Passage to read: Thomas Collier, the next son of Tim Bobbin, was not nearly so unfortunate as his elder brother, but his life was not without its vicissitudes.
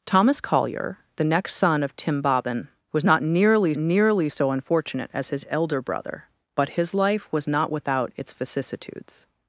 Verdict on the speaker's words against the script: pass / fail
fail